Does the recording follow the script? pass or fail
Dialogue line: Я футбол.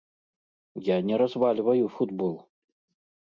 fail